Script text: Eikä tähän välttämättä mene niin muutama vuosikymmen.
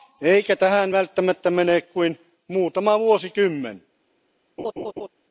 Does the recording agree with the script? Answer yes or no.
no